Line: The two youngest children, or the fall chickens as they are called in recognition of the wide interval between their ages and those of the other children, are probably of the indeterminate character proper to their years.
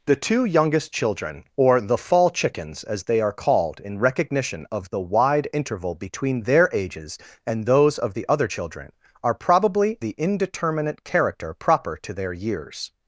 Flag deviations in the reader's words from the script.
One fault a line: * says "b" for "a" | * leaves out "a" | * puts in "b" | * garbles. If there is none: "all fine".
* leaves out "of"